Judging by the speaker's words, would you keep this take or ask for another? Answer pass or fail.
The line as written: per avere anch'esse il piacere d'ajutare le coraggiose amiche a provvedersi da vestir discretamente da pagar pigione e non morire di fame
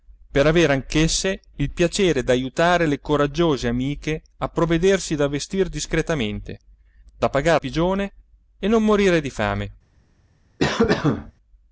pass